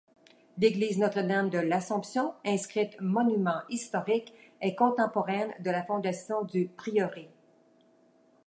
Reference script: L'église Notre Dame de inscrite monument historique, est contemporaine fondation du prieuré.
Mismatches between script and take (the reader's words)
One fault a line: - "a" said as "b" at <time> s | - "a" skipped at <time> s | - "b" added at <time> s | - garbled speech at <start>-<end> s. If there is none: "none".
- "l'Assomption" added at 1.6 s
- "de la" added at 5.6 s